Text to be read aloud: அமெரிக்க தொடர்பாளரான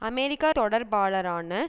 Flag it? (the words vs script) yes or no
no